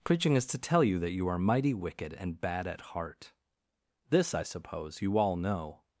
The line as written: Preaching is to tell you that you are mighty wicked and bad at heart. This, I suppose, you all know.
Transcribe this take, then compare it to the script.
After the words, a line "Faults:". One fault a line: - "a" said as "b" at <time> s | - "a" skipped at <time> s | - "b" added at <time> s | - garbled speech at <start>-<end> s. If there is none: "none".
Preaching is to tell you that you are mighty wicked and bad at heart. This, I suppose, you all know.
Faults:
none